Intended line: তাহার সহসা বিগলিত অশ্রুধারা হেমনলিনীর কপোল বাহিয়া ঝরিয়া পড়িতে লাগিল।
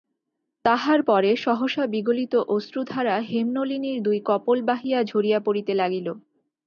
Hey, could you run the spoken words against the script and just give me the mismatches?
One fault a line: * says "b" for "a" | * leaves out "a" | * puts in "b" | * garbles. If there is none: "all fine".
* puts in "পরে"
* puts in "দুই"